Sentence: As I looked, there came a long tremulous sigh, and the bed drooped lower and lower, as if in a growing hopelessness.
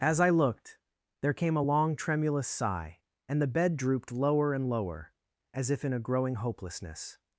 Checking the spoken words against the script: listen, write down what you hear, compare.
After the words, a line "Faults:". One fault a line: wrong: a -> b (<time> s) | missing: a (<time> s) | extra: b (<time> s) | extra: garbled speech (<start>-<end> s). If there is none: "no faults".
As I looked, there came a long tremulous sigh, and the bed drooped lower and lower, as if in a growing hopelessness.
Faults:
no faults